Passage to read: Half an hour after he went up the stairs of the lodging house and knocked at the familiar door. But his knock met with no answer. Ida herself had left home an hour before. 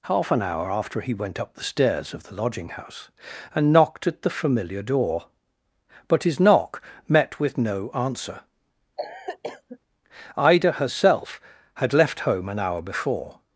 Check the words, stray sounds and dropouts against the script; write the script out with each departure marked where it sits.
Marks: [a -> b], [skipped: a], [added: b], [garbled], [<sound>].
Half an hour after he went up the stairs of the lodging house and knocked at the familiar door. But his knock met with no answer. [cough] Ida herself had left home an hour before.